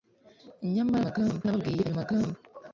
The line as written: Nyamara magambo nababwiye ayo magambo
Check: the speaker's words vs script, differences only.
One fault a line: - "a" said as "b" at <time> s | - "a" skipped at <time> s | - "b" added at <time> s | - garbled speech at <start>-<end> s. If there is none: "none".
none